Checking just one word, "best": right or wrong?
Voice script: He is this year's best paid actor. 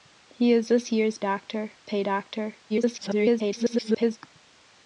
wrong